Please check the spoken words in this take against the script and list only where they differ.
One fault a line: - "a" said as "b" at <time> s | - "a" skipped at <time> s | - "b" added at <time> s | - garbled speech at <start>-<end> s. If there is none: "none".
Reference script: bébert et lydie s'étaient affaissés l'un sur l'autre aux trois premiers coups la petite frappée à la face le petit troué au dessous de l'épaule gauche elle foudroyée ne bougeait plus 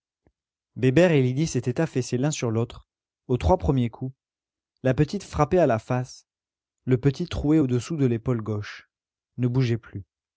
- "elle foudroyée" skipped at 8.9 s